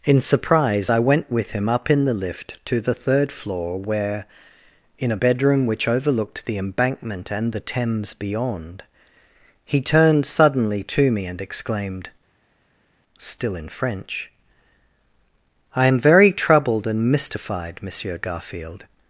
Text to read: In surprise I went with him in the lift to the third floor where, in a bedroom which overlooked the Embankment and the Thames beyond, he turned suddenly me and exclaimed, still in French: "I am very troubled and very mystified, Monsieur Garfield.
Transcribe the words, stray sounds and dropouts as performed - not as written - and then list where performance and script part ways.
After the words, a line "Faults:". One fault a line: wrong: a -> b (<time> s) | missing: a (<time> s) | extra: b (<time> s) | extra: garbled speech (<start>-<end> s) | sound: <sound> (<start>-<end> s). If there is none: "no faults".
In surprise I went with him up in the lift to the third floor where, in a bedroom which overlooked the Embankment and the Thames beyond, he turned suddenly to me and exclaimed, still in French: "I am very troubled and mystified, Monsieur Garfield.
Faults:
extra: up (1.7 s)
extra: to (10.8 s)
missing: very (17.1 s)